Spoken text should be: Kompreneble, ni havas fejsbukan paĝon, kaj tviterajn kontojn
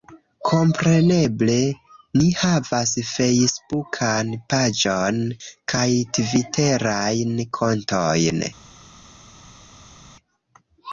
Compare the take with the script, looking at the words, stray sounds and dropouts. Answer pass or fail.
pass